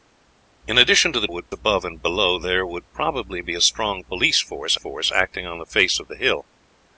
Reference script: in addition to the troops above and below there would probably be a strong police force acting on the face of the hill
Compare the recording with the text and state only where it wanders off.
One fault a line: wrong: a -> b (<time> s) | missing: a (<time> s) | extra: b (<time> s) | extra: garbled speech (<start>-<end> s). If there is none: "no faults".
wrong: troops -> would (1.3 s)
extra: force (4.7 s)